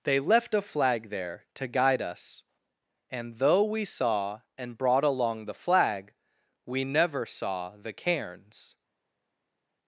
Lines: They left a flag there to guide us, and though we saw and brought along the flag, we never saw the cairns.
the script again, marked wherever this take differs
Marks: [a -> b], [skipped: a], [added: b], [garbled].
They left a flag there to guide us, and though we saw and brought along the flag, we never saw the cairns.